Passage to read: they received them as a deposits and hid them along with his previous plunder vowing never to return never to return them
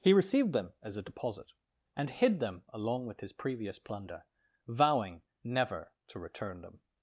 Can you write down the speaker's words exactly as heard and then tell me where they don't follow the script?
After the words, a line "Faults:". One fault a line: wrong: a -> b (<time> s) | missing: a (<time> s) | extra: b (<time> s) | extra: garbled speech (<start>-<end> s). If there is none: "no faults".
he received them as a deposit and hid them along with his previous plunder vowing never to return them
Faults:
wrong: they -> he (0.0 s)
wrong: deposits -> deposit (1.0 s)
missing: never to return (6.6 s)